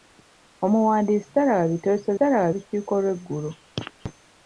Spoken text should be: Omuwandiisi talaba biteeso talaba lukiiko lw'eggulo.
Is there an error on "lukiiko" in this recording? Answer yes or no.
no